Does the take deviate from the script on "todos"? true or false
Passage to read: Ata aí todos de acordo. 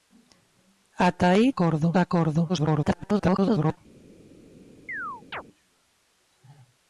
true